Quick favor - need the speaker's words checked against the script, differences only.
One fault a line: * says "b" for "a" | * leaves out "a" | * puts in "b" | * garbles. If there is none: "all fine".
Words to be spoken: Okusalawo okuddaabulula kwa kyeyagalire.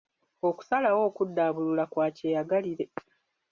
all fine